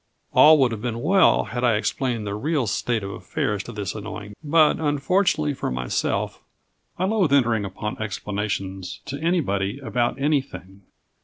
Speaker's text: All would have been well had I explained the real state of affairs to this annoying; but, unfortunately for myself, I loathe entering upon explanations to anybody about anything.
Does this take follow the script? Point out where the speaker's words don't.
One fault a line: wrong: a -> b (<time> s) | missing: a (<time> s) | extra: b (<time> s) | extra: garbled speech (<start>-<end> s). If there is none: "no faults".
no faults